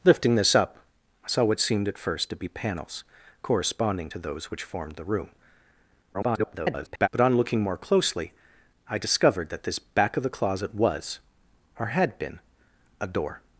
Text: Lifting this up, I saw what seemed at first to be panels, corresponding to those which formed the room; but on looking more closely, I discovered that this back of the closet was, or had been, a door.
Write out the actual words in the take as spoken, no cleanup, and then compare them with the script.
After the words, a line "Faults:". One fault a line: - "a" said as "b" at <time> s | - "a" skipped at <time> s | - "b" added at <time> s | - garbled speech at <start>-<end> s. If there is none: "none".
Lifting this up, I saw what seemed at first to be panels, corresponding to those which formed the room; [garbled] but on looking more closely, I discovered that this back of the closet was, or had been, a door.
Faults:
- garbled speech at 6.1-7.1 s